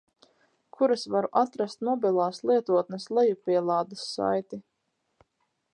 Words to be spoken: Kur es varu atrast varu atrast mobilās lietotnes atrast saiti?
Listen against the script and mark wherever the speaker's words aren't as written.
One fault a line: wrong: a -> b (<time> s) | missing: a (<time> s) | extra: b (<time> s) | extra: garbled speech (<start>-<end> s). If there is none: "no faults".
missing: varu atrast (1.9 s)
wrong: atrast -> lejupielādes (3.2 s)